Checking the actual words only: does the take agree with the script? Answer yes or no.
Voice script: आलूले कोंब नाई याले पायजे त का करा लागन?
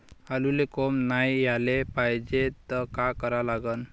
yes